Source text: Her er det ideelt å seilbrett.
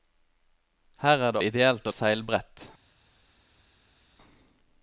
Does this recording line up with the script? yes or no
yes